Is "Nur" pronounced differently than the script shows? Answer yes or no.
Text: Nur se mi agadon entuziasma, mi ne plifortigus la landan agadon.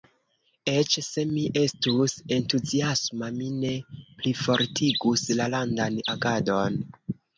yes